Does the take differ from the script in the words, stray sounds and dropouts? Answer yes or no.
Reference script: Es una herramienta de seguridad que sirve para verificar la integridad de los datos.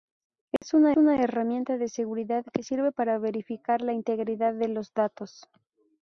yes